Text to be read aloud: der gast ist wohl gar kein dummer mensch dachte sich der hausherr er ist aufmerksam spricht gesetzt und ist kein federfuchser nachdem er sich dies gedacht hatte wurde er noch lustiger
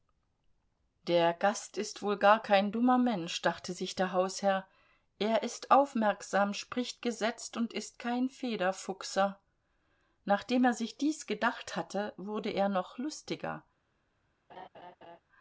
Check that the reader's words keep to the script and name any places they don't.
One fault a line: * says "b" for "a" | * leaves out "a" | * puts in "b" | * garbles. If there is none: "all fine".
all fine